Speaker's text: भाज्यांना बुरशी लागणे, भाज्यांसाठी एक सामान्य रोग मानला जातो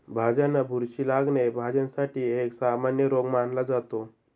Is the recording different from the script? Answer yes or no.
no